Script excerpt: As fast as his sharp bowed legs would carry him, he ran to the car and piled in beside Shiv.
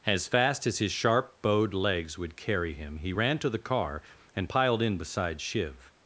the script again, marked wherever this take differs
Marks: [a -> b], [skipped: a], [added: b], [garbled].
As fast as his sharp bowed legs would carry him, he ran to the car and piled in beside Shiv.